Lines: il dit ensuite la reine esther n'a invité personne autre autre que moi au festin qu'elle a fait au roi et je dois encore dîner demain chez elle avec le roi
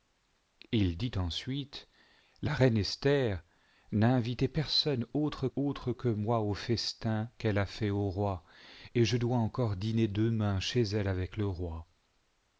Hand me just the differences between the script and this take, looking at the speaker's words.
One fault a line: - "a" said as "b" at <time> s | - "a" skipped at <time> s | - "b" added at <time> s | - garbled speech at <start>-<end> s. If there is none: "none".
none